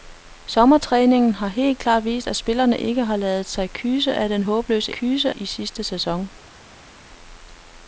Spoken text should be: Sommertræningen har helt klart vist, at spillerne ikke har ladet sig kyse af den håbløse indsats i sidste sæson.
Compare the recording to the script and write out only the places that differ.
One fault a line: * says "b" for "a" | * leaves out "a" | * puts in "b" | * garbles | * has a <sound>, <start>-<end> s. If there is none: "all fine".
* says "kyse" for "indsats"